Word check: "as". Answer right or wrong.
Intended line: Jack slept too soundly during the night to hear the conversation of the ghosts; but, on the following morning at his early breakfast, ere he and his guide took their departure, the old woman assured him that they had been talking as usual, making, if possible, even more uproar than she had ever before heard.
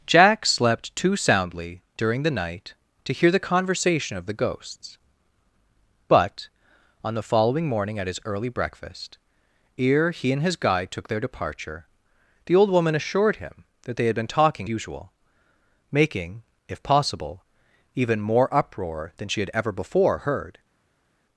wrong